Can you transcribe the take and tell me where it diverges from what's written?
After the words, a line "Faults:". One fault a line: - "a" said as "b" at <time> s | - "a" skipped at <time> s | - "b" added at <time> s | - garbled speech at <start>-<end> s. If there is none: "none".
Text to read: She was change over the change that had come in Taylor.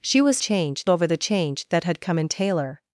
She was change over the change that had come in Taylor.
Faults:
none